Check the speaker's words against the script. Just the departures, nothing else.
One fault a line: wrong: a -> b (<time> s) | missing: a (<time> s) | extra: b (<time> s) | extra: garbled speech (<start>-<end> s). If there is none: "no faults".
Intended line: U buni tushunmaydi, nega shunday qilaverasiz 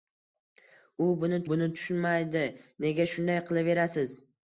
extra: buni (1.5 s)